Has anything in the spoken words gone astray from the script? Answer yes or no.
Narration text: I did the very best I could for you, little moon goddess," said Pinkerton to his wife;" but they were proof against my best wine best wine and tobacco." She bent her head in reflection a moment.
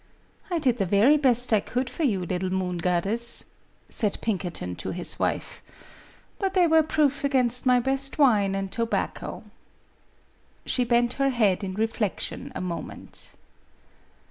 yes